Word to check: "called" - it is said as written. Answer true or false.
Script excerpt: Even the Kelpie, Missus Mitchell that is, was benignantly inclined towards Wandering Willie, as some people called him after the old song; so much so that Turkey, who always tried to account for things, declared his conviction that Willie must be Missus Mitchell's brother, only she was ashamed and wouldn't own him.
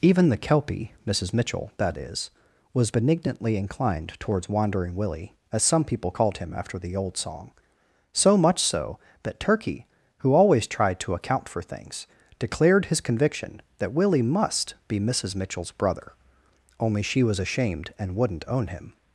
true